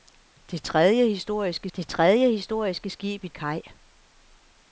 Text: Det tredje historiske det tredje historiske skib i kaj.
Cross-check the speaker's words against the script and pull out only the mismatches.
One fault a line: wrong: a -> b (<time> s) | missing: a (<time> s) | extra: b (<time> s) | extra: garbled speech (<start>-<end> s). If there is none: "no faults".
no faults